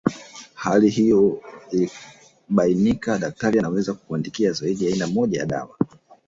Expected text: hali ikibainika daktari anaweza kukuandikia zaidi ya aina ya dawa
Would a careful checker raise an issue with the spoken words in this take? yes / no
yes